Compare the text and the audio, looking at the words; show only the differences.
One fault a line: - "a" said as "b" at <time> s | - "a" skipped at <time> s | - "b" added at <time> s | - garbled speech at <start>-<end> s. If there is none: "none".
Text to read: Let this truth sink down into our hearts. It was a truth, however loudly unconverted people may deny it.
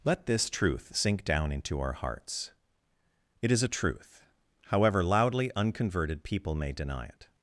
- "was" said as "is" at 3.5 s